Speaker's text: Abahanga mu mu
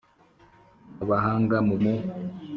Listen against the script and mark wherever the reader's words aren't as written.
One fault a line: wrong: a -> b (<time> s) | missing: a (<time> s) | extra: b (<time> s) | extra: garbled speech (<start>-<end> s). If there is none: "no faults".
no faults